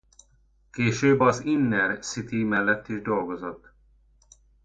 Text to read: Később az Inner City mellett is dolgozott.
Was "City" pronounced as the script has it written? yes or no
yes